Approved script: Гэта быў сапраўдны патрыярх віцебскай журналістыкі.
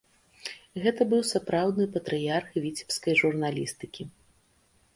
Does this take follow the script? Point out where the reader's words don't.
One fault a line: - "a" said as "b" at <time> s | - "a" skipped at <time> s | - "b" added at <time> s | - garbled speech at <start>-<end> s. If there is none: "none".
none